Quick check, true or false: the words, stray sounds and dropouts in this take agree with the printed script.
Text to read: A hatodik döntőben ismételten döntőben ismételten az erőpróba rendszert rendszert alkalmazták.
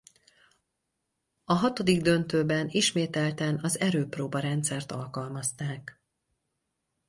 false